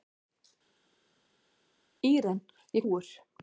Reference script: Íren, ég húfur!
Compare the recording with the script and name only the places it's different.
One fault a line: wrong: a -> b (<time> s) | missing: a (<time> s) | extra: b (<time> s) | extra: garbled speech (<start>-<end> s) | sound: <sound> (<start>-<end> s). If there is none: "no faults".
no faults